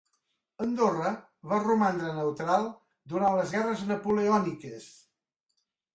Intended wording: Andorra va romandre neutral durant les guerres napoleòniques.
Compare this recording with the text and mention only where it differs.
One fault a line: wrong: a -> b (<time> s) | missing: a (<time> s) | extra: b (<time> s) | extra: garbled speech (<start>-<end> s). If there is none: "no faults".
no faults